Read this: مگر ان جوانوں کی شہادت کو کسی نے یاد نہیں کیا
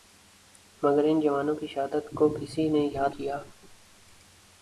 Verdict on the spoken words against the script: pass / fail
fail